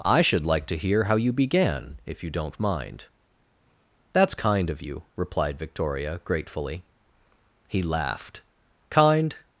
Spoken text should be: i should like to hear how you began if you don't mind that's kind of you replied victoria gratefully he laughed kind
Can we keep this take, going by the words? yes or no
yes